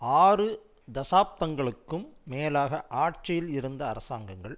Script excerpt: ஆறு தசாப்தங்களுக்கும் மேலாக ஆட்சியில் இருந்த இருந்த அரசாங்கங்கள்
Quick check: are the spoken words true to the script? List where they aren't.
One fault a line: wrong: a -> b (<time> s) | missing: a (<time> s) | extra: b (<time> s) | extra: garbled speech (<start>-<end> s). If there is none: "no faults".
missing: இருந்த (3.8 s)